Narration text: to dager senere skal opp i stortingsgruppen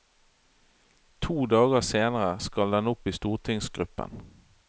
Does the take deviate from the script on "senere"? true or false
false